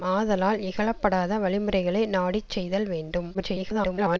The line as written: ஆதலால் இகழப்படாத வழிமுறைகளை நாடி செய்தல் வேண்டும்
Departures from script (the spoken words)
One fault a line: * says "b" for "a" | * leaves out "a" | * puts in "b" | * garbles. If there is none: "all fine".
* garbles